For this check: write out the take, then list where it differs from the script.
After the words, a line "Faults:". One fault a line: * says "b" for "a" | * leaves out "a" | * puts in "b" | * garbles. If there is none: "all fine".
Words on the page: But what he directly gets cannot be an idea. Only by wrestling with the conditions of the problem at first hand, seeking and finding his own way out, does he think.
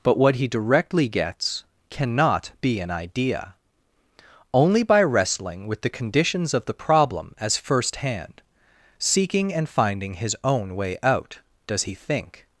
But what he directly gets cannot be an idea. Only by wrestling with the conditions of the problem as first hand, seeking and finding his own way out, does he think.
Faults:
* says "as" for "at"